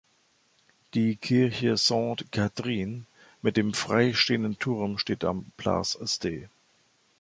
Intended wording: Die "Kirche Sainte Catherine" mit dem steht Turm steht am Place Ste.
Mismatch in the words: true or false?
true